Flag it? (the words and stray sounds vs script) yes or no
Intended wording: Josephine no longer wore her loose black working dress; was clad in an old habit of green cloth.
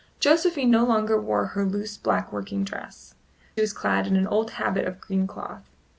no